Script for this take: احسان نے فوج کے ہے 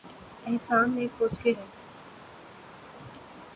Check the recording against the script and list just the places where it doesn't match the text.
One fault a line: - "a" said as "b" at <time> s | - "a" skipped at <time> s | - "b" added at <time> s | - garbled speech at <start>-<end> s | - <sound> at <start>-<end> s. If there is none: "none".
none